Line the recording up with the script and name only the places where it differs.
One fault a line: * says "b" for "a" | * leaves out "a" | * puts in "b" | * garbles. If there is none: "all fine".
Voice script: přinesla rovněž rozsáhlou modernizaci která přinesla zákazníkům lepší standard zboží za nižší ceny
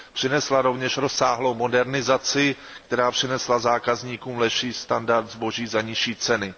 all fine